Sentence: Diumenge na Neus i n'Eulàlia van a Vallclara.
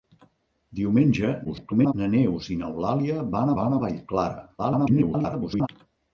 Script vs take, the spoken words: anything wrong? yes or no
yes